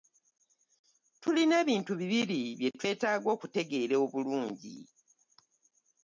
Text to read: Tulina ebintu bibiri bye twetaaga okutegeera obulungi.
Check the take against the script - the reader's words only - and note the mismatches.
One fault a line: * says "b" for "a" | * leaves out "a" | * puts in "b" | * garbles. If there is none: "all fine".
all fine